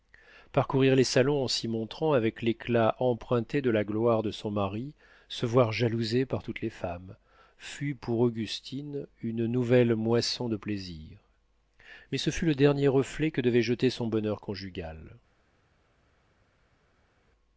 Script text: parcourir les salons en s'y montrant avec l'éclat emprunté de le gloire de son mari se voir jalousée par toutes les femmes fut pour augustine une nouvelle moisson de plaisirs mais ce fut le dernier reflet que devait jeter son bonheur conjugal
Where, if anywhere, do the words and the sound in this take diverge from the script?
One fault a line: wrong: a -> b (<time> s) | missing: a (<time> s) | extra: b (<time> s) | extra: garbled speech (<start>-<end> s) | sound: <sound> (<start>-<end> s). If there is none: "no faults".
wrong: le -> la (3.7 s)